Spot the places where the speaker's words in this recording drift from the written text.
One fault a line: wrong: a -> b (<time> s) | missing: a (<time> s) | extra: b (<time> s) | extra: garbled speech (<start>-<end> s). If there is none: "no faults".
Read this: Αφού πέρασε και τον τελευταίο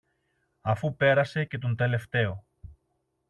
no faults